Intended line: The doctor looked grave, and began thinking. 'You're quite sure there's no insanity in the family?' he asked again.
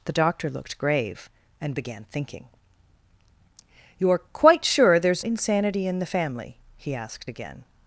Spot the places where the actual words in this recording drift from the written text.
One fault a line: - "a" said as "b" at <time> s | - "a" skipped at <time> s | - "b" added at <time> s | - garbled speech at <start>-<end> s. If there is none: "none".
- "no" skipped at 5.2 s